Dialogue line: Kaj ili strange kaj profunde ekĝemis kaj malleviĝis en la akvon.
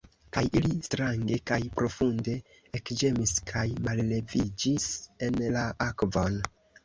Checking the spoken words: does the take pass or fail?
pass